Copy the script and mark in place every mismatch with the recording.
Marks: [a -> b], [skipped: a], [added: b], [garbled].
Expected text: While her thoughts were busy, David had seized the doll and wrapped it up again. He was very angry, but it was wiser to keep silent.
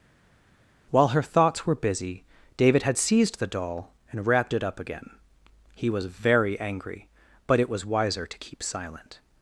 While her thoughts were busy, David had seized the doll and wrapped it up again. He was very angry, but it was wiser to keep silent.